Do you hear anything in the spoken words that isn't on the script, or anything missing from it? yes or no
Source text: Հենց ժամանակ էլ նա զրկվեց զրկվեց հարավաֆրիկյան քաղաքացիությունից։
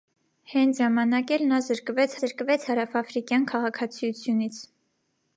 no